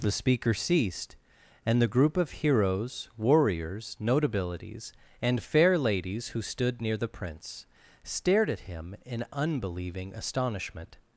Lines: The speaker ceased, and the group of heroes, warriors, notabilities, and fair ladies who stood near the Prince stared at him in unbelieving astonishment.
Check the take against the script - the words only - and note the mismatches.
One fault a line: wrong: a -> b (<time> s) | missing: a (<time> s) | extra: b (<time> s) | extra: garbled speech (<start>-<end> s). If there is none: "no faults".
no faults